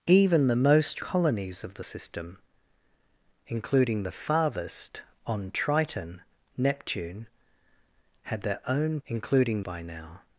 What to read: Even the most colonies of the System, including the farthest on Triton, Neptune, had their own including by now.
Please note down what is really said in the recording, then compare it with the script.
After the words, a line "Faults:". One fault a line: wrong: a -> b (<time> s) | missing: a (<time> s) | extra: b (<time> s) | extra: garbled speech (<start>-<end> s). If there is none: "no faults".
Even the most colonies of the System, including the farthest on Triton, Neptune, had their own including by now.
Faults:
no faults